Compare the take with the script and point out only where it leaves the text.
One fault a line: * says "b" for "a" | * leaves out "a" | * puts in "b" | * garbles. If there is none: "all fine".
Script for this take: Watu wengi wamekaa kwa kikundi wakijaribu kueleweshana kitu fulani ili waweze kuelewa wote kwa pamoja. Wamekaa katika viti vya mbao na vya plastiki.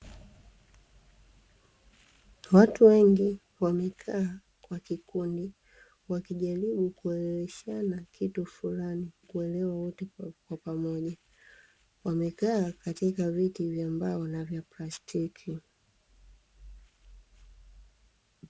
* leaves out "ili waweze"